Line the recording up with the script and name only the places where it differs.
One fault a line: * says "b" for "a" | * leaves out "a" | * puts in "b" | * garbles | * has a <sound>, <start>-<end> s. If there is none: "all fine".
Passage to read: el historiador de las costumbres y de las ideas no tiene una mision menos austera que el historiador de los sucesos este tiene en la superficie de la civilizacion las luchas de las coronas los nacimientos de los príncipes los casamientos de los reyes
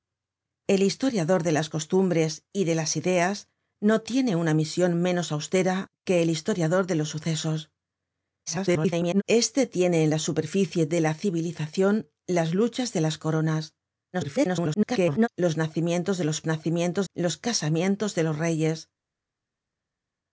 * garbles
* garbles
* says "nacimientos" for "príncipes"